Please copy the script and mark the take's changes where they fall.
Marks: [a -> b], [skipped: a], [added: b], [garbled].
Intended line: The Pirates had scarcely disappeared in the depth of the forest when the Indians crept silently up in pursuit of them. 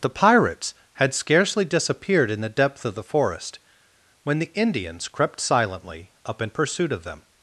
The Pirates had scarcely disappeared in the depth of the forest when the Indians crept silently up in pursuit of them.